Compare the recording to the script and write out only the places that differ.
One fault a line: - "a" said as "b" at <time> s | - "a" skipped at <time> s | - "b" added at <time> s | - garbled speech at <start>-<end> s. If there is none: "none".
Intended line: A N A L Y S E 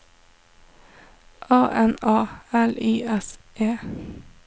none